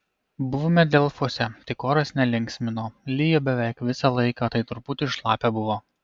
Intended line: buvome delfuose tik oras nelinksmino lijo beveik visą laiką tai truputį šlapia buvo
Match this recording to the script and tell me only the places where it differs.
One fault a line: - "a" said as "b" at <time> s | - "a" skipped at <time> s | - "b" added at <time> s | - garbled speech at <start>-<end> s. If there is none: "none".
none